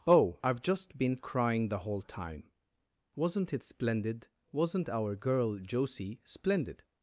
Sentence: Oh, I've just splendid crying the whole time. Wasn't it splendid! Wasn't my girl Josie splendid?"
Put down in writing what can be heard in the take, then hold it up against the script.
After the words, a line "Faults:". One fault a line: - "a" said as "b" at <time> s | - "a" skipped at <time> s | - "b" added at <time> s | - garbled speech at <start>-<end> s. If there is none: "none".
Oh, I've just been crying the whole time. Wasn't it splendid! Wasn't our girl Josie splendid?"
Faults:
- "splendid" said as "been" at 1.0 s
- "my" said as "our" at 4.9 s